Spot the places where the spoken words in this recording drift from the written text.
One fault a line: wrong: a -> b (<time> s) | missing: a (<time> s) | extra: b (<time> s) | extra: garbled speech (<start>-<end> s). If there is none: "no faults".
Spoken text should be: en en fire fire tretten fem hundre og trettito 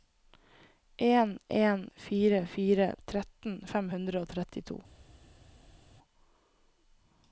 no faults